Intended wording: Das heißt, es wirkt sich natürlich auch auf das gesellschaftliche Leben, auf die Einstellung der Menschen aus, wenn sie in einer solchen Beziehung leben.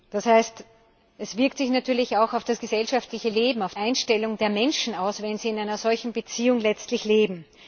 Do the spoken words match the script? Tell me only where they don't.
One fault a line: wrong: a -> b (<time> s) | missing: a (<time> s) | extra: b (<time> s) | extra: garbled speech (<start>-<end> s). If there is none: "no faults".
missing: die (3.8 s)